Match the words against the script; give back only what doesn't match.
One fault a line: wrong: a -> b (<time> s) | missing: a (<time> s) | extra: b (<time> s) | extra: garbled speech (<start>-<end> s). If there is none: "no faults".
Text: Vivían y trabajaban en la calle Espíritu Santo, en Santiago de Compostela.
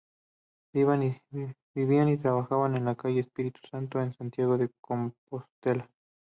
no faults